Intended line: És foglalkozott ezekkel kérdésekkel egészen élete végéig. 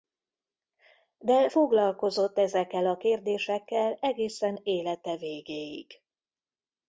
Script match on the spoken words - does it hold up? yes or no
no